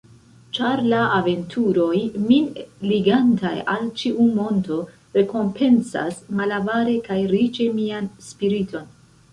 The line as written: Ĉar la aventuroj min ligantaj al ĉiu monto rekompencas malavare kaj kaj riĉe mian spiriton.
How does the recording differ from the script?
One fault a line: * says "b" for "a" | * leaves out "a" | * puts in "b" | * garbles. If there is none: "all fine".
* leaves out "kaj"